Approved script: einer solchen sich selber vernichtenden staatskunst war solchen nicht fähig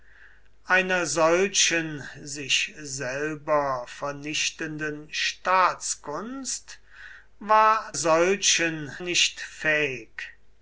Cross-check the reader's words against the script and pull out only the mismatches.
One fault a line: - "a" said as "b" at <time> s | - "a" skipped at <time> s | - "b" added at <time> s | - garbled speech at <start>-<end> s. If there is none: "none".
none